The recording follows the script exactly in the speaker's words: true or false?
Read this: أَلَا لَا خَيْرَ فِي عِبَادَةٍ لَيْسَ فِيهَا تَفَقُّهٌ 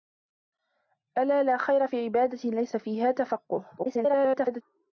false